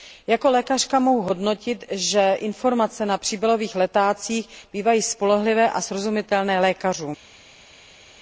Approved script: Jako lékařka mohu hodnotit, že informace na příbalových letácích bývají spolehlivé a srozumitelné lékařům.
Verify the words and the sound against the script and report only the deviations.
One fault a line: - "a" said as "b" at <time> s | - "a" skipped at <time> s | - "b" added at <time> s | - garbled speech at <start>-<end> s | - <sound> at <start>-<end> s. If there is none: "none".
none